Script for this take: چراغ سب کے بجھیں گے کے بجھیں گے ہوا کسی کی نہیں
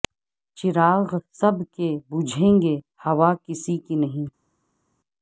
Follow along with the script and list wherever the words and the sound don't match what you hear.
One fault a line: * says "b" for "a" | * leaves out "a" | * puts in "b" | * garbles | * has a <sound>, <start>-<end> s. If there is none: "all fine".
* leaves out "کے بجھیں گے"